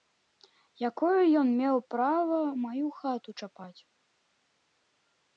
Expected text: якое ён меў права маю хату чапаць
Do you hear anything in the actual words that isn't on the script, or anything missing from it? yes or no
no